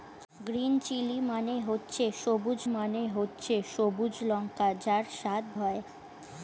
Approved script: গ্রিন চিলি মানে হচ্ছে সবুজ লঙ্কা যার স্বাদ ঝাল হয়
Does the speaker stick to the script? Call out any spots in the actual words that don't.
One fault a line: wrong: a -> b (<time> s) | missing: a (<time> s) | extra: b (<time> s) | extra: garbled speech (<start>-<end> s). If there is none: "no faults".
extra: মানে হচ্ছে সবুজ (2.7 s)
missing: ঝাল (5.4 s)